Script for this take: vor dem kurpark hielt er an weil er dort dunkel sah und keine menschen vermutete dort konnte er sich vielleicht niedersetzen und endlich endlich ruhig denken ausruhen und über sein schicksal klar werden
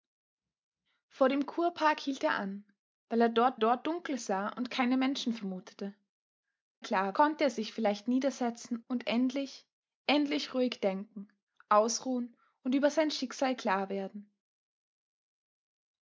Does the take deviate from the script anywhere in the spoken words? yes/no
yes